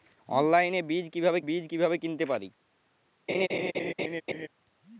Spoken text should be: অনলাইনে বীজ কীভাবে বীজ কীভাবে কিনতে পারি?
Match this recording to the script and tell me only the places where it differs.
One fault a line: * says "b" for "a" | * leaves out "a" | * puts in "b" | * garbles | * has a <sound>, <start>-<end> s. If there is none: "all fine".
* has a laugh, 3.3-4.5 s